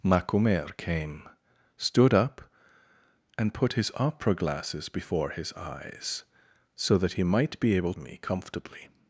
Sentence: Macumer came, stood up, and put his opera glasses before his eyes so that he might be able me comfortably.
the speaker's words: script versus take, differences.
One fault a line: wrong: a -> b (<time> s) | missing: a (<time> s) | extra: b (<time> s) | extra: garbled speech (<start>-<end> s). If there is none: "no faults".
no faults